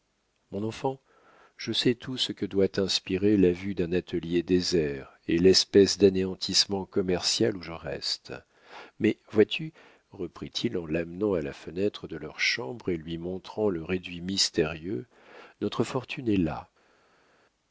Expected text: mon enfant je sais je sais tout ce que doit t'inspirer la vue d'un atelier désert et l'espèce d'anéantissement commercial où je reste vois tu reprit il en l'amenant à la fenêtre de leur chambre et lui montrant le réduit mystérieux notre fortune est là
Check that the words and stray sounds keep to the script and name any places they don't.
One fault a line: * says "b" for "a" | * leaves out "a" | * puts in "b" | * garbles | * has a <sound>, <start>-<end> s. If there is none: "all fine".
* leaves out "je sais"
* puts in "mais"